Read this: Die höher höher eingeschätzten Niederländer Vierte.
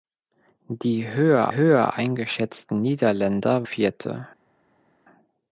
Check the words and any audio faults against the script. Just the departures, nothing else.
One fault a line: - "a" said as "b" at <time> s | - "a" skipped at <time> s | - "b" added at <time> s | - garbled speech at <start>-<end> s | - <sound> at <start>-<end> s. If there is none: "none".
none